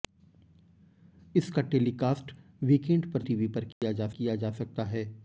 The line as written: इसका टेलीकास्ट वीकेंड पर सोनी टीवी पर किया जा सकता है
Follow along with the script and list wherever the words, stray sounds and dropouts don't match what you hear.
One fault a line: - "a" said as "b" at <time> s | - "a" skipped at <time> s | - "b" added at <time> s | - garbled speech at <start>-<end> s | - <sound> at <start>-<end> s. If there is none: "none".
- "सोनी" skipped at 3.2 s
- dropout at 3.7-3.8 s
- "किया जा" added at 4.1 s